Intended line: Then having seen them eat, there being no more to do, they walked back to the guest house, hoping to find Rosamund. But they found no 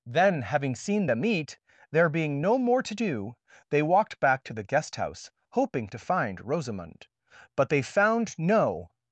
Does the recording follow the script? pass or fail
pass